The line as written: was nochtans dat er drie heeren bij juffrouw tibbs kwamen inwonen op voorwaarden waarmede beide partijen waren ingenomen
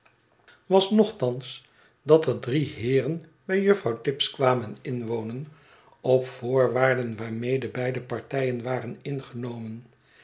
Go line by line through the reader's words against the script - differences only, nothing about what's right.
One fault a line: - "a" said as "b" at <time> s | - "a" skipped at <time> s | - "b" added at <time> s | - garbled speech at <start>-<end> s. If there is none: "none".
none